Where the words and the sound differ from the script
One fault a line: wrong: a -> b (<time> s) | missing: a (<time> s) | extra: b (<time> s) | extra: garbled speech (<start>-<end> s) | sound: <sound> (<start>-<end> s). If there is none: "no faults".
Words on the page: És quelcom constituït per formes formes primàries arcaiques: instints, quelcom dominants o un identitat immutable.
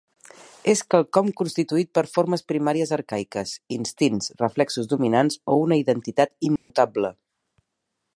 missing: formes (2.4 s)
wrong: quelcom -> reflexos (4.4 s)
wrong: un -> una (5.7 s)
sound: dropout (6.6-6.7 s)